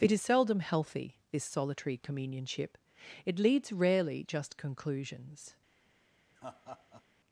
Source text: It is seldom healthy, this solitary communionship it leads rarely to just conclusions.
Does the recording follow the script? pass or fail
fail